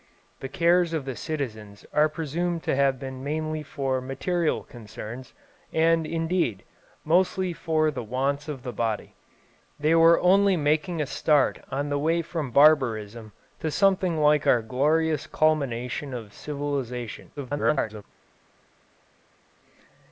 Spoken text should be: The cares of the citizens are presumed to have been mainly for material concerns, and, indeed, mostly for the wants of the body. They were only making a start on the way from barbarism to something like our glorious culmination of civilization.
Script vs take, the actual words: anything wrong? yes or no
yes